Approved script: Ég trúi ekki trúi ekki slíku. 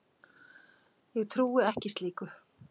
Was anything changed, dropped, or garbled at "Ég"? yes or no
no